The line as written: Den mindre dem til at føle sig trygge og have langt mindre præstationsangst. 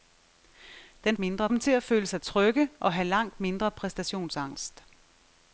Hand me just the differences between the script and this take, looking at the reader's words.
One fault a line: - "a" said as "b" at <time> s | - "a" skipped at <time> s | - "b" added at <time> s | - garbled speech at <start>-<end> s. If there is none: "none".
none